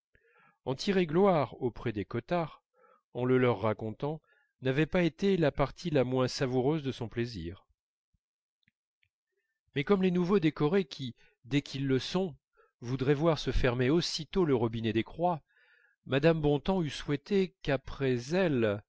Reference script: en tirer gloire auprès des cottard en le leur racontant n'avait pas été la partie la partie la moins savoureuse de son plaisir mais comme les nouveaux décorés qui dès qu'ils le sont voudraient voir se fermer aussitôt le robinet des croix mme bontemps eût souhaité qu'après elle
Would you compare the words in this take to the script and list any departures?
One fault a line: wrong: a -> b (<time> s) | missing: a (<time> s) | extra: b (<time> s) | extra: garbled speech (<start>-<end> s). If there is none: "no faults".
missing: partie la (6.0 s)